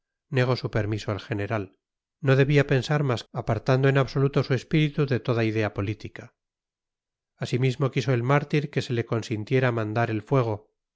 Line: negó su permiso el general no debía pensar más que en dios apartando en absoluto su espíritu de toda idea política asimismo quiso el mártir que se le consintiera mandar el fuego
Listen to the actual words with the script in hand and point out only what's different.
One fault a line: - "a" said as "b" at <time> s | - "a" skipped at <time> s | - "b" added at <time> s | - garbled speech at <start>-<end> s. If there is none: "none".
- "que en dios" skipped at 3.2 s